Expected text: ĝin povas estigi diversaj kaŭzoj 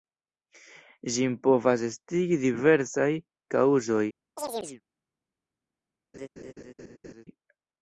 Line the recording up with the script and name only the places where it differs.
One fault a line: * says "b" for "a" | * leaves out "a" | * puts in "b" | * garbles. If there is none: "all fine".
all fine